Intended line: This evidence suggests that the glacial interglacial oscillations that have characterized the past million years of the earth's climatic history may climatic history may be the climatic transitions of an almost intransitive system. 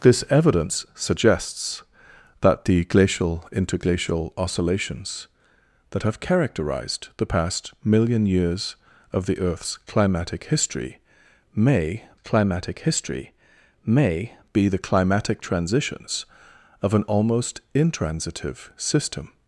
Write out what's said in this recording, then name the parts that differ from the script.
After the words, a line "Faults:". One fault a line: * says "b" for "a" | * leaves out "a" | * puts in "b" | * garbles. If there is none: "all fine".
This evidence suggests that the glacial interglacial oscillations that have characterized the past million years of the earth's climatic history may climatic history may be the climatic transitions of an almost intransitive system.
Faults:
all fine